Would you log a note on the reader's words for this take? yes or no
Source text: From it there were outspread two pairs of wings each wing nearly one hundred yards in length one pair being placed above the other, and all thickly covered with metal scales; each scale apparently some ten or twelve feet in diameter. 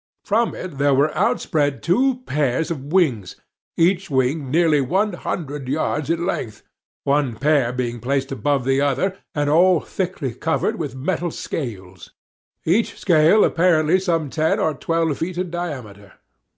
no